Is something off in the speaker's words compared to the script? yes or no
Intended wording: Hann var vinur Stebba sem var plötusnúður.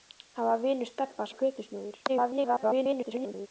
yes